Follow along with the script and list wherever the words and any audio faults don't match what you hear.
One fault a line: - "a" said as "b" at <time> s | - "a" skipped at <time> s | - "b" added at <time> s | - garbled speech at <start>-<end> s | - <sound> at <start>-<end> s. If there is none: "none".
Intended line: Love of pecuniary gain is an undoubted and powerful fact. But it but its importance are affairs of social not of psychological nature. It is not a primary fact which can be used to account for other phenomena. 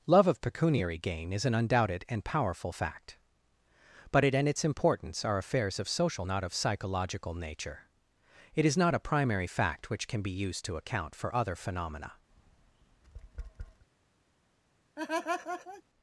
- "but" said as "and" at 4.3 s
- tap at 12.3-13.9 s
- laugh at 15.0-15.8 s